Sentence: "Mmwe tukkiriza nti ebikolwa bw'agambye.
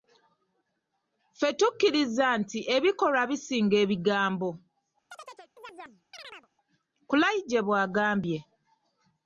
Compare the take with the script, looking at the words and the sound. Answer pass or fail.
fail